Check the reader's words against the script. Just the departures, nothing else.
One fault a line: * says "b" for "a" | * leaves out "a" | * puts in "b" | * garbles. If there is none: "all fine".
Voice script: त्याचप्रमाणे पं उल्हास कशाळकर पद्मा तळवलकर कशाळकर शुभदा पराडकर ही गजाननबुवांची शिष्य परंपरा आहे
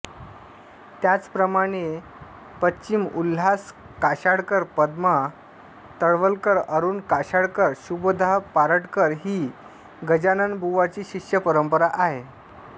* puts in "अरुण"